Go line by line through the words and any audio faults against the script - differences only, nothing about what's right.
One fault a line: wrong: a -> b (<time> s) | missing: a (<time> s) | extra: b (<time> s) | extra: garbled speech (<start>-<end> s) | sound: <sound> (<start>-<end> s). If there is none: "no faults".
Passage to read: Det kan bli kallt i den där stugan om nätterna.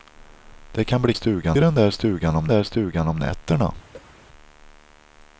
wrong: kallt -> stugan (1.1 s)
extra: där stugan om (2.5 s)
sound: cough (3.9-4.2 s)